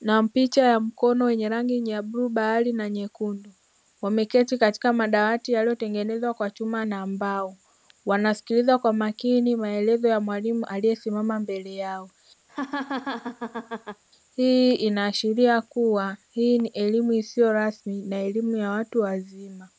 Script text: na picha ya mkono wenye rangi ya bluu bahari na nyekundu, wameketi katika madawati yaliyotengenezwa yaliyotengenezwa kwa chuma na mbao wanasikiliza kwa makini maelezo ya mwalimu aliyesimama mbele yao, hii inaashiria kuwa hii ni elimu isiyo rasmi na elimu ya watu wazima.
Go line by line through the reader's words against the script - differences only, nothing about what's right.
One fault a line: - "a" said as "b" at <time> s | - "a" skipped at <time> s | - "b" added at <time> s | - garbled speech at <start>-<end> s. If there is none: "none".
- "yaliyotengenezwa" skipped at 6.3 s